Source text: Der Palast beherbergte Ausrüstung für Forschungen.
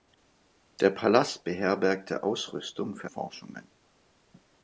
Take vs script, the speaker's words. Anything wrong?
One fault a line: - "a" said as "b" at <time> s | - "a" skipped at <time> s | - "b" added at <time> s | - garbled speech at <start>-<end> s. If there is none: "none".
none